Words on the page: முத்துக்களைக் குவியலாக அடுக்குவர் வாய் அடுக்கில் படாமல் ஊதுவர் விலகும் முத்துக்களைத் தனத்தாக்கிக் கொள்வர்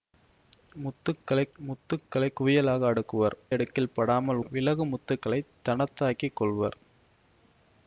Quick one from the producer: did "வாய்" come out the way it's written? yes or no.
no